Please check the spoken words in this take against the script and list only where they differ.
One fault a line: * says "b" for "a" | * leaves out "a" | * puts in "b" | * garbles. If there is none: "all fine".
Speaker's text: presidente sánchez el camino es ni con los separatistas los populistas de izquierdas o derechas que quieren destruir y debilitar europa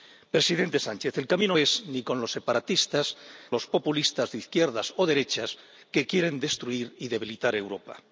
all fine